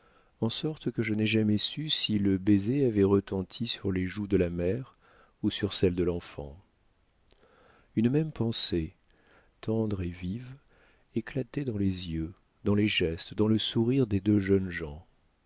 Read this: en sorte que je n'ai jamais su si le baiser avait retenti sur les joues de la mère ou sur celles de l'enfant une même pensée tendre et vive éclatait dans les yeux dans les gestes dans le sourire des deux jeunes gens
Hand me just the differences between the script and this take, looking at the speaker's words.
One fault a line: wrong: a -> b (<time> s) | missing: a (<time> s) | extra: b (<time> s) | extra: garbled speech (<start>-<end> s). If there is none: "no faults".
no faults